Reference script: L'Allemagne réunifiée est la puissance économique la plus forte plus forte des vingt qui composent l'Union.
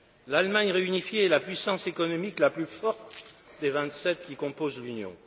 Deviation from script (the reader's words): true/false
true